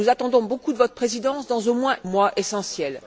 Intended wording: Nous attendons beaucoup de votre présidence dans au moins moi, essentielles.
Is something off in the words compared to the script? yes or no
no